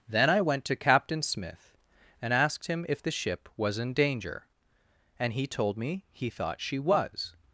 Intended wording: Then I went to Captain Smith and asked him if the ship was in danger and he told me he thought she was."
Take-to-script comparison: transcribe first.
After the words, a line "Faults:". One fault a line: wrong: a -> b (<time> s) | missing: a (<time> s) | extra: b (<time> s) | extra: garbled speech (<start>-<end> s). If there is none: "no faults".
Then I went to Captain Smith and asked him if the ship was in danger and he told me he thought she was."
Faults:
no faults